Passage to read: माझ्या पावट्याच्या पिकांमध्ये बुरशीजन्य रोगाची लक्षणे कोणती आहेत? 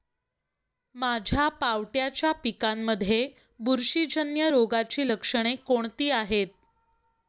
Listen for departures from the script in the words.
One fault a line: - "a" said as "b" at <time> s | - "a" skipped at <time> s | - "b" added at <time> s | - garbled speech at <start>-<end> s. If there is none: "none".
none